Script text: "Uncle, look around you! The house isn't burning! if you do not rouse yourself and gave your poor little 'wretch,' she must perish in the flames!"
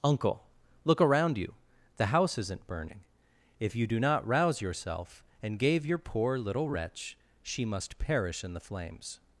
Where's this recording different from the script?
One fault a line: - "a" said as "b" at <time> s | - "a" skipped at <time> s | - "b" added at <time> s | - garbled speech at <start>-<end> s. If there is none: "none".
none